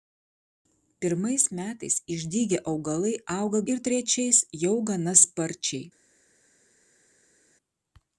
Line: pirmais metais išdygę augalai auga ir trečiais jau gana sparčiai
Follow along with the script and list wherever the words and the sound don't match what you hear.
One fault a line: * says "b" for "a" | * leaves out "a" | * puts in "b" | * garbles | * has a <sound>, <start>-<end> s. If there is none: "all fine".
all fine